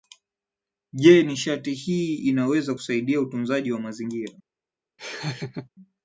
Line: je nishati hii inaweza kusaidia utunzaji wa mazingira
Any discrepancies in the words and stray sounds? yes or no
yes